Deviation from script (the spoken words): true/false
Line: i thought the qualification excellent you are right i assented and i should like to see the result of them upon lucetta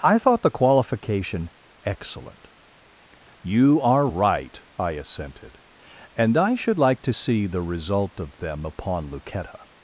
false